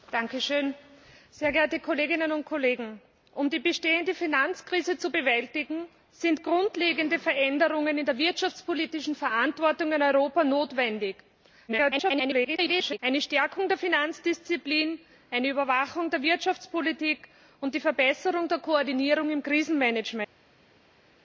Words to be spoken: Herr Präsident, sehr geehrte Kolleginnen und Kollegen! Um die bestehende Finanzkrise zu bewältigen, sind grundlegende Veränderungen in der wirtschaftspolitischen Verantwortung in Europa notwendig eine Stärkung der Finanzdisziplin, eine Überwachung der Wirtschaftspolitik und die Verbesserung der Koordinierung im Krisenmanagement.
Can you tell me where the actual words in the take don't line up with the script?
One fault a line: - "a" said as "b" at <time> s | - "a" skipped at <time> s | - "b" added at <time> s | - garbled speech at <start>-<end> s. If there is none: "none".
- garbled speech at 11.7-13.0 s